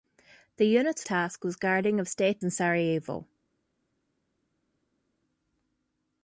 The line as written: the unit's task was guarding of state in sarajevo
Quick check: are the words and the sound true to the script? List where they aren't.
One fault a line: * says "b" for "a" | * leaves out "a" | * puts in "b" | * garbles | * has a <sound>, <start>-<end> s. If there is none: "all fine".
all fine